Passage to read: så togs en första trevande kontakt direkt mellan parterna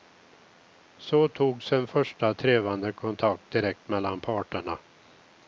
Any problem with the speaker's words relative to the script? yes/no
no